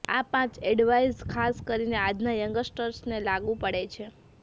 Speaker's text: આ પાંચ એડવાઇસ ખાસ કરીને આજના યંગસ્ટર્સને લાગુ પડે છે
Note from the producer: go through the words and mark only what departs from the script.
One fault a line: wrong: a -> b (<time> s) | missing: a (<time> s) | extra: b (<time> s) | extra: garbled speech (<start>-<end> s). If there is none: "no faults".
no faults